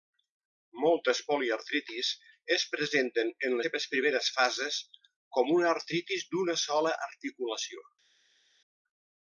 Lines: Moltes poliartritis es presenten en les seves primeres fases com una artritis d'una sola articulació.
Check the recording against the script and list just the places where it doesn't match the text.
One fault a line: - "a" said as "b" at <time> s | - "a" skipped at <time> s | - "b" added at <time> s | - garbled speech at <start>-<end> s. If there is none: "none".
- "les" skipped at 3.6 s